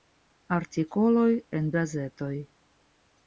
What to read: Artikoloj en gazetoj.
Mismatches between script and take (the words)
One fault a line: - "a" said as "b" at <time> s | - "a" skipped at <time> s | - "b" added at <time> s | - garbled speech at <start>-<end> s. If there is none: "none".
none